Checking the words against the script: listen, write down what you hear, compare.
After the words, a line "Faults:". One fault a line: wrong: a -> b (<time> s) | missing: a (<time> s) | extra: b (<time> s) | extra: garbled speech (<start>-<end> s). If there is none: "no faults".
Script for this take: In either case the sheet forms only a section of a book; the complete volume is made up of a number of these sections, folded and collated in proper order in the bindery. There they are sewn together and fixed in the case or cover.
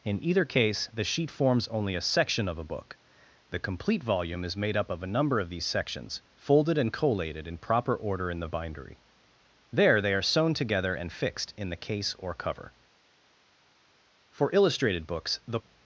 In either case the sheet forms only a section of a book; the complete volume is made up of a number of these sections, folded and collated in proper order in the bindery. There they are sewn together and fixed in the case or cover. For illustrated books the
Faults:
extra: For illustrated books the (14.3 s)